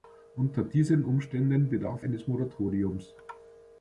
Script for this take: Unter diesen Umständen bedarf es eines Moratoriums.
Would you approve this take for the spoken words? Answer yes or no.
no